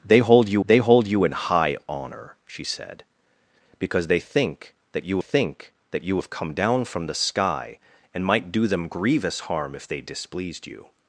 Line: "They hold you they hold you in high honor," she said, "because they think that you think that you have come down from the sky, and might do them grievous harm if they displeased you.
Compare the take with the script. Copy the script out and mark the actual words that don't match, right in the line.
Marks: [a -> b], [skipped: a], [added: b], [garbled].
"They hold you they hold you in high honor," she said, "because they think that you think that you have come down from the sky, and might do them grievous harm if they displeased you.